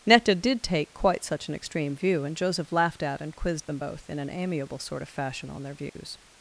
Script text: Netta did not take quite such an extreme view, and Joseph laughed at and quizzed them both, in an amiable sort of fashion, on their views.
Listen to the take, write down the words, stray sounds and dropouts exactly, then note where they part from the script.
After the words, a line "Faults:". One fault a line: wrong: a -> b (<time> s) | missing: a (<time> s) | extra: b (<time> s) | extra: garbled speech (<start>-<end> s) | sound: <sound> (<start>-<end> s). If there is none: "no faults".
Netta did take quite such an extreme view, and Joseph laughed at and quizzed them both, in an amiable sort of fashion, on their views.
Faults:
missing: not (0.6 s)
sound: dropout (5.9-6.0 s)